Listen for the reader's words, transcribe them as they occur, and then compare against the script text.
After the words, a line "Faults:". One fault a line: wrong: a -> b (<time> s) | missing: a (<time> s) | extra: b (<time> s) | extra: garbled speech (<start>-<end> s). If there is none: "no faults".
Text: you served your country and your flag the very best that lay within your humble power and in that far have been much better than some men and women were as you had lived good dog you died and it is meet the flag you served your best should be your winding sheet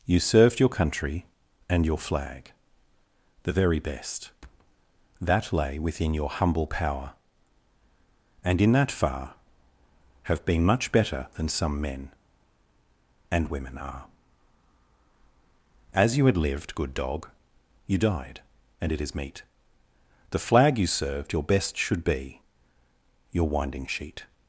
you served your country and your flag the very best that lay within your humble power and in that far have been much better than some men and women are as you had lived good dog you died and it is meet the flag you served your best should be your winding sheet
Faults:
wrong: were -> are (13.8 s)